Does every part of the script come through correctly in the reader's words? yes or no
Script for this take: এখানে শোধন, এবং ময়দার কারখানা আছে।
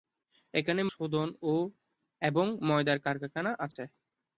yes